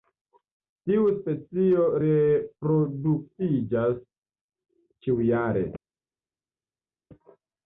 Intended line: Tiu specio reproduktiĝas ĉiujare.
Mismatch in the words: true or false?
false